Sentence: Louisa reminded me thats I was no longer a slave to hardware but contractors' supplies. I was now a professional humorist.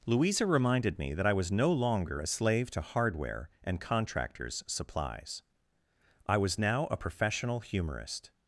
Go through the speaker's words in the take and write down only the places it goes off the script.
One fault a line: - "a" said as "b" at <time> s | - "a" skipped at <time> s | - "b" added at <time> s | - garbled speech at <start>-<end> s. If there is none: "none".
- "thats" said as "that" at 1.1 s
- "but" said as "and" at 3.6 s